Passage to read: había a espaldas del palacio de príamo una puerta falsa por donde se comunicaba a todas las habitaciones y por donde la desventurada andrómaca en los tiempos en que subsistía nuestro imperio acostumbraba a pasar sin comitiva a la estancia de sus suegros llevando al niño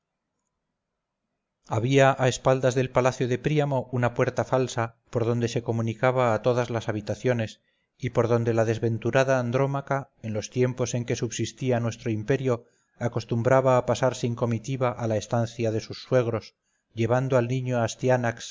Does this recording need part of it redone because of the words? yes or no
no